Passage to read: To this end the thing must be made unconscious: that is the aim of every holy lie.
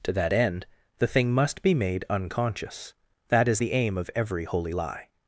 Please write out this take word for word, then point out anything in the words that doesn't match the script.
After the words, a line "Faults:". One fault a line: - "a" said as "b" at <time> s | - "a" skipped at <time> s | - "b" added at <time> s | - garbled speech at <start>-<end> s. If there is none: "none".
To that end the thing must be made unconscious: that is the aim of every holy lie.
Faults:
- "this" said as "that" at 0.1 s